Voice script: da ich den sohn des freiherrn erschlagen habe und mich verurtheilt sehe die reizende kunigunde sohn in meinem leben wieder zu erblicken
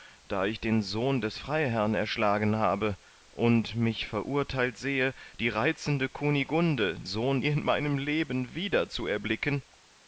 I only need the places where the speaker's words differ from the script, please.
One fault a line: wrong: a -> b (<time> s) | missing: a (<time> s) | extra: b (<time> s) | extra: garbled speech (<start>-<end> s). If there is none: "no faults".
no faults